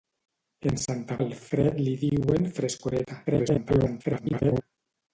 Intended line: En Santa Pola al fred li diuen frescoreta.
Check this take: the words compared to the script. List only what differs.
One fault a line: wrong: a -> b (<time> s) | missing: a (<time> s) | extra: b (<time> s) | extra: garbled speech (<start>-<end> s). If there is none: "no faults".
missing: Pola (1.2 s)
extra: garbled speech (3.3-4.6 s)